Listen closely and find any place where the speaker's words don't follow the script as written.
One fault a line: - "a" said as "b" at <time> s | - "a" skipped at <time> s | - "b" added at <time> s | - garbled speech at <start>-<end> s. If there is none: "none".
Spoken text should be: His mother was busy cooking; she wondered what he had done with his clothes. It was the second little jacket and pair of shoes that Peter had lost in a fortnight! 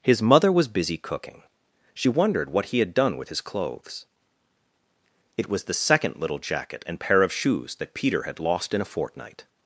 none